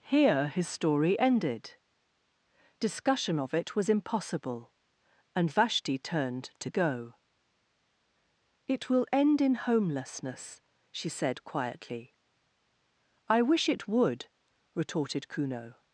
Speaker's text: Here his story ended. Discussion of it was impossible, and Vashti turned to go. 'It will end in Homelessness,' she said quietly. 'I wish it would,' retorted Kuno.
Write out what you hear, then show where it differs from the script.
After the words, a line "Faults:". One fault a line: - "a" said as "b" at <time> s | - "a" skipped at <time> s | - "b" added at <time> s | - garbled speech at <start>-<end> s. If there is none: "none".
Here his story ended. Discussion of it was impossible, and Vashti turned to go. 'It will end in Homelessness,' she said quietly. 'I wish it would,' retorted Kuno.
Faults:
none